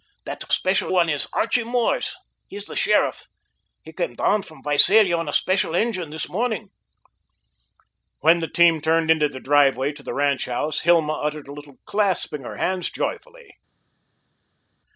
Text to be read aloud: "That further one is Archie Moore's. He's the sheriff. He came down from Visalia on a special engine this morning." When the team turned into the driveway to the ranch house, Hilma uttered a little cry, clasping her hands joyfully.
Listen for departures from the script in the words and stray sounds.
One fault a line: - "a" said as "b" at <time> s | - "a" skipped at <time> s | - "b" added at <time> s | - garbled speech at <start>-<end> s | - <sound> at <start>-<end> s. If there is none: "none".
- "further" said as "special" at 0.5 s
- "cry" skipped at 11.8 s